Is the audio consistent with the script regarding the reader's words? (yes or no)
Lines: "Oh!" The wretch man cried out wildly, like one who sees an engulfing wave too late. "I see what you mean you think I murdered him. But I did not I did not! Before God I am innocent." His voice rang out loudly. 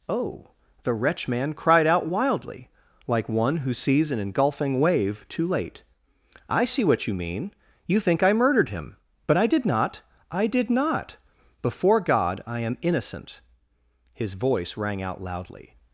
yes